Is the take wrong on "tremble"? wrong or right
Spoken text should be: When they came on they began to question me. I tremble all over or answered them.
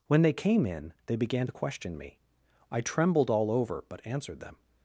wrong